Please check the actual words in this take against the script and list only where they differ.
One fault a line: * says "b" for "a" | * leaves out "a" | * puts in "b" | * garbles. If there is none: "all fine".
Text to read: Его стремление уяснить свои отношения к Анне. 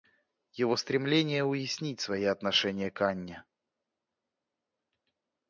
all fine